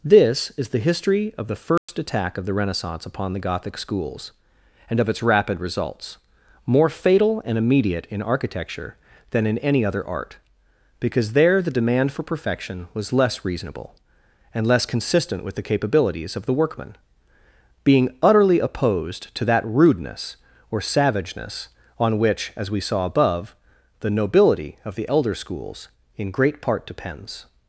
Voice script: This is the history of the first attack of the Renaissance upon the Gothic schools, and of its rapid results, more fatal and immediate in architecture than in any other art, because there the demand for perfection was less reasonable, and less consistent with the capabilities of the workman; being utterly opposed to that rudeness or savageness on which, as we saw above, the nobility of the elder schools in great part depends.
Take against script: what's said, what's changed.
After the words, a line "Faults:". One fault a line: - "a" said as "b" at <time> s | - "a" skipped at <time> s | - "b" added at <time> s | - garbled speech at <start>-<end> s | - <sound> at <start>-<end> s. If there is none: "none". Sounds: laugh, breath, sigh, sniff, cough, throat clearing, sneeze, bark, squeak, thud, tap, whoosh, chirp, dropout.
This is the history of the first attack of the Renaissance upon the Gothic schools, and of its rapid results, more fatal and immediate in architecture than in any other art, because there the demand for perfection was less reasonable, and less consistent with the capabilities of the workman; being utterly opposed to that rudeness or savageness on which, as we saw above, the nobility of the elder schools in great part depends.
Faults:
- dropout at 1.8-1.9 s